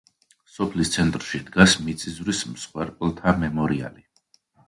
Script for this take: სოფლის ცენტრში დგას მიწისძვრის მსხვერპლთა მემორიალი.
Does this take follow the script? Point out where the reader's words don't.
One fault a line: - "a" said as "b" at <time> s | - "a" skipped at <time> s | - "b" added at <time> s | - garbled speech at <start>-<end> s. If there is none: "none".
none